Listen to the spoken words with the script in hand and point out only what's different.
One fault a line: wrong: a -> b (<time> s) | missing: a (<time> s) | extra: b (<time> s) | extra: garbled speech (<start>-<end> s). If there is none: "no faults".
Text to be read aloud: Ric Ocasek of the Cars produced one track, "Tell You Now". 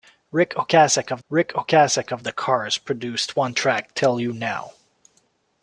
extra: ric Ocasek of (1.3 s)